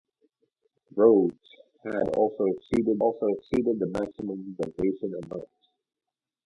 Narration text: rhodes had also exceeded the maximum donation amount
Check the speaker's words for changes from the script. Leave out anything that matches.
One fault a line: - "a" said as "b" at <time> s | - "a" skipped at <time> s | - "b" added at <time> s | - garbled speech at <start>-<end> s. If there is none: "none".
- "also exceeded" added at 3.0 s